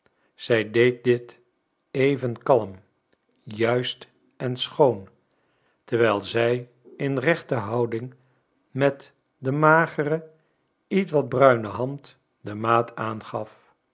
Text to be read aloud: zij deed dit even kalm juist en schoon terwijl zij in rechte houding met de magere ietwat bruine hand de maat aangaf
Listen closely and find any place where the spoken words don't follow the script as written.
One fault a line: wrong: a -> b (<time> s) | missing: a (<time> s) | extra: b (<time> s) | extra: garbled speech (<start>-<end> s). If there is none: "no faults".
no faults